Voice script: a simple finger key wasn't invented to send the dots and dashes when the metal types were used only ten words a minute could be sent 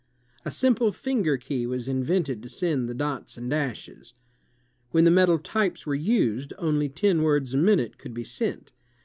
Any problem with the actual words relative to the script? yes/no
yes